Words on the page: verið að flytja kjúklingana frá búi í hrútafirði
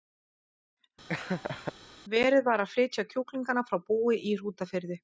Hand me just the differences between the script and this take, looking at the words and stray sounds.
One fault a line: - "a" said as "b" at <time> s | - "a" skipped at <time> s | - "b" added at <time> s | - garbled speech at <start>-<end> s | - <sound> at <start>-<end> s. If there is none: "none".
- laugh at 1.1-1.7 s
- "var" added at 2.5 s